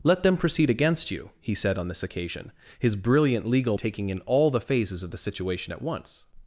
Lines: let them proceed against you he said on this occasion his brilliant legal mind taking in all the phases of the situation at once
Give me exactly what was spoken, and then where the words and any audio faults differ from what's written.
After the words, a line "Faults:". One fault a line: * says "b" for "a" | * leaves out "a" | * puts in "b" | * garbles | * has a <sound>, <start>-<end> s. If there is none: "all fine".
let them proceed against you he said on this occasion his brilliant legal taking in all the phases of the situation at once
Faults:
* leaves out "mind"